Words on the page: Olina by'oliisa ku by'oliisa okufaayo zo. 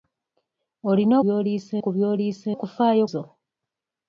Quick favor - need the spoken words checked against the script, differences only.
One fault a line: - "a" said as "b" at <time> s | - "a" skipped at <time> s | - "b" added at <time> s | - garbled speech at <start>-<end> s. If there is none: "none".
none